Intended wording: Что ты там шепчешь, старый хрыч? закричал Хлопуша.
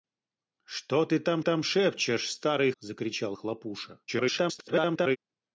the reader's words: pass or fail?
fail